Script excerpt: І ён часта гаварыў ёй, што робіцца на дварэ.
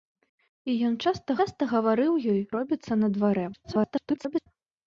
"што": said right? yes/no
no